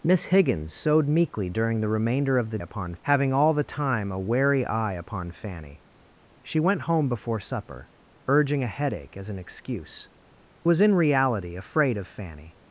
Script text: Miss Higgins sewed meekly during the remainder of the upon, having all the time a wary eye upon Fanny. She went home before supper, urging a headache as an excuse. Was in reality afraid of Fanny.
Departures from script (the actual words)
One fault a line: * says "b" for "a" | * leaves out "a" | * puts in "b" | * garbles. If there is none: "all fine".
all fine